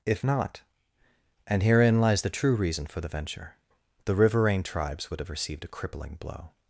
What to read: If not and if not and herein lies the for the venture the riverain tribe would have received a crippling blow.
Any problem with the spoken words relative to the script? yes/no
yes